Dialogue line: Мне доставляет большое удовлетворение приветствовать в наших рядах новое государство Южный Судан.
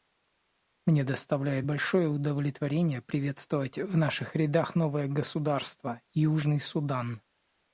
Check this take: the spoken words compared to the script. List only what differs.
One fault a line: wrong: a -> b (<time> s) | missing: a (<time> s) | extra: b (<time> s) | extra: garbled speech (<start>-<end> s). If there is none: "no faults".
no faults